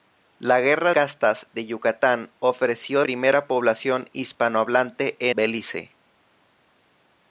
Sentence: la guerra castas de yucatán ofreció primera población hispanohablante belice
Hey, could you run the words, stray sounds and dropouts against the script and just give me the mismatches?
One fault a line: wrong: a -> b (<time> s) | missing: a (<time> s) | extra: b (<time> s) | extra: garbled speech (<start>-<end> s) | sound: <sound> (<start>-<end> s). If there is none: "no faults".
no faults